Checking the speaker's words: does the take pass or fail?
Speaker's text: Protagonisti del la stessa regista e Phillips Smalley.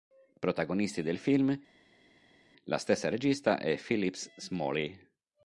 fail